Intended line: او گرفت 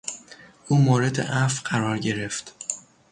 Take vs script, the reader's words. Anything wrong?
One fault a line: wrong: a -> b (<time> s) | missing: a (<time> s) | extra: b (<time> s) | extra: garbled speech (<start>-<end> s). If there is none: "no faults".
extra: مورد عفو قرار (0.8 s)